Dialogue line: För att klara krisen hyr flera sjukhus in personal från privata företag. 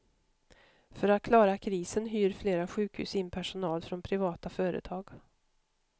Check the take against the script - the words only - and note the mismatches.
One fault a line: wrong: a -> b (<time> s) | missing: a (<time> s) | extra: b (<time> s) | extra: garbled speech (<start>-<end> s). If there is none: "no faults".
no faults